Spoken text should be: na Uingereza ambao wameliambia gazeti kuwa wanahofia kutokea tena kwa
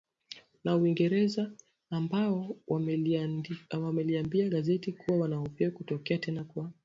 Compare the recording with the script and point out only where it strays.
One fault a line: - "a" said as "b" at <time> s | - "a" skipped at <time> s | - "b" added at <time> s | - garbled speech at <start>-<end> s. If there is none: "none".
none